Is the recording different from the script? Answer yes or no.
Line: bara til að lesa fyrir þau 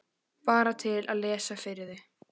no